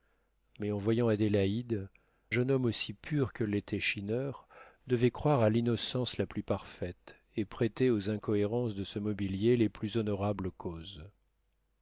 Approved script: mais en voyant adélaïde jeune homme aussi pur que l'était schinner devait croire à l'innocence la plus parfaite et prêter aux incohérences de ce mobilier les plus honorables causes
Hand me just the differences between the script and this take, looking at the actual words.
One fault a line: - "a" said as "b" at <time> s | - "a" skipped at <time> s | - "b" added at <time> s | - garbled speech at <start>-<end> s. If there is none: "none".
none